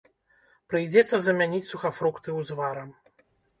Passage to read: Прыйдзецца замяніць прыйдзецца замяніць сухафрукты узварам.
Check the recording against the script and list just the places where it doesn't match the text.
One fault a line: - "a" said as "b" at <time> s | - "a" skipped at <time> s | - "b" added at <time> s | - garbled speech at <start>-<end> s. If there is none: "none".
- "прыйдзецца замяніць" skipped at 1.6 s